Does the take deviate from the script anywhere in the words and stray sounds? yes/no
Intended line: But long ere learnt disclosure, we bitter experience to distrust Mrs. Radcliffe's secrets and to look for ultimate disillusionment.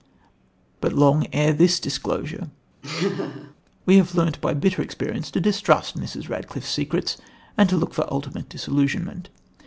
yes